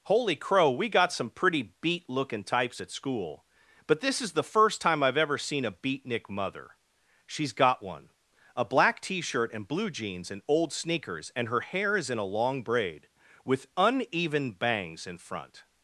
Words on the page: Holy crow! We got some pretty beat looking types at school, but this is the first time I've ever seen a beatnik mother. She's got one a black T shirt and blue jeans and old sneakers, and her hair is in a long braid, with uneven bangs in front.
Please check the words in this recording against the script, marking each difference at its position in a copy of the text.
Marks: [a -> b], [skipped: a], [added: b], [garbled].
Holy crow! We got some pretty beat looking types at school, but this is the first time I've ever seen a beatnik mother. She's got one a black T shirt and blue jeans and old sneakers, and her hair is in a long braid, with uneven bangs in front.